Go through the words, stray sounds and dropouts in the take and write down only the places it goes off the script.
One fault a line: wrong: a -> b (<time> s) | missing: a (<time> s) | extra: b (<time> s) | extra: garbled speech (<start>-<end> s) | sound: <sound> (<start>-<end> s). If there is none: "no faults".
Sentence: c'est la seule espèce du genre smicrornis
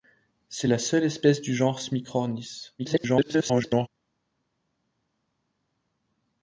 extra: garbled speech (2.8-3.9 s)